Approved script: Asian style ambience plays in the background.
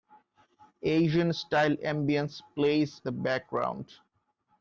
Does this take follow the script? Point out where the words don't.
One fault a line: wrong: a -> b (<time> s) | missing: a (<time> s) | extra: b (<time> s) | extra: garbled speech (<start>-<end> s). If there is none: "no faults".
missing: in (3.0 s)